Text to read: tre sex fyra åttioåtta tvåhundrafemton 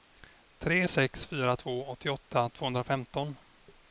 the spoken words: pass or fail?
fail